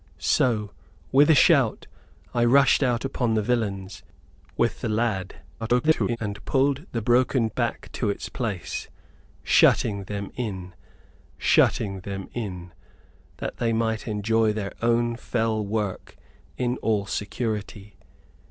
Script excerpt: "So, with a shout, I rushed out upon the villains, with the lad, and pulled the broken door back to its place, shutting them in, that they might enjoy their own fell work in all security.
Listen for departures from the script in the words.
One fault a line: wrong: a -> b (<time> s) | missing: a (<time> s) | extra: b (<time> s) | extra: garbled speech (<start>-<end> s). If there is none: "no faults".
extra: garbled speech (5.6-6.2 s)
missing: door (7.5 s)
extra: shutting them in (11.4 s)